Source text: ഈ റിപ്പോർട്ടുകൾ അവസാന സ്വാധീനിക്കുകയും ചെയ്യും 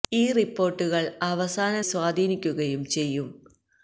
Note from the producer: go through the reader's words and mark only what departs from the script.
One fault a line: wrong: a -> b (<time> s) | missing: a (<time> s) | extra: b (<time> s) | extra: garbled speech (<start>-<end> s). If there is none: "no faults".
no faults